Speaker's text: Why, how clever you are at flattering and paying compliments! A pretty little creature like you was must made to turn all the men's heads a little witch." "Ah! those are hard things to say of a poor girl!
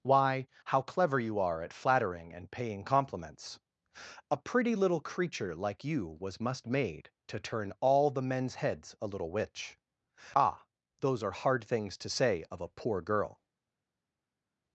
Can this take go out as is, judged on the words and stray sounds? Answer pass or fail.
pass